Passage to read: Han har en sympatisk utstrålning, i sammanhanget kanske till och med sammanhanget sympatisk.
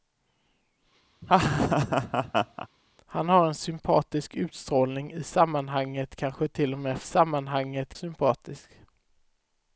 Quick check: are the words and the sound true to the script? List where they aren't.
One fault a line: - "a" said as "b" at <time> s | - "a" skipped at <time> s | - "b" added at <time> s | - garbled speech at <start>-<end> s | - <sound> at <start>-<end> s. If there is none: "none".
- laugh at 1.2-2.7 s